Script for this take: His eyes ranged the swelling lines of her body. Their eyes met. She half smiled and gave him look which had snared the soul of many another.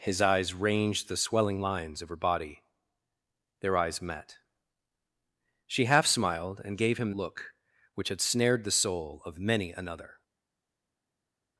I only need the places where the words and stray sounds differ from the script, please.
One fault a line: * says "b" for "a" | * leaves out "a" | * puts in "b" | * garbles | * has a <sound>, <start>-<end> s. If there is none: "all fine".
all fine